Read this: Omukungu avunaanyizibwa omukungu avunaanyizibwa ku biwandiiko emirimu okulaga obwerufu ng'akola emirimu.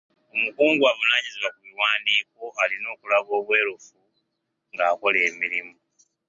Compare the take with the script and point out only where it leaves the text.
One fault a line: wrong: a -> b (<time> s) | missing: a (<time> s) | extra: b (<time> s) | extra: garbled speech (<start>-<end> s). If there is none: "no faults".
missing: omukungu avunaanyizibwa (1.5 s)
wrong: emirimu -> alina (2.6 s)